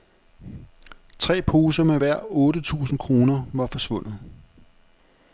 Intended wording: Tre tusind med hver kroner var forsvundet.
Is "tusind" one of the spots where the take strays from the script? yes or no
yes